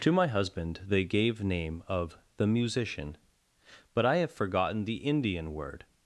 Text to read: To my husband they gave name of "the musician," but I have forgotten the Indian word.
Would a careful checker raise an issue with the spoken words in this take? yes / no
no